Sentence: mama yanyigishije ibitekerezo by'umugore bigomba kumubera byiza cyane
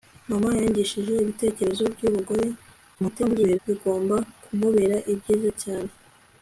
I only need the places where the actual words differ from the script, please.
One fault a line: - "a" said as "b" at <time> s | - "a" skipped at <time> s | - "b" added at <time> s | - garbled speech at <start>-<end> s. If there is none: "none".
- garbled speech at 2.9-3.6 s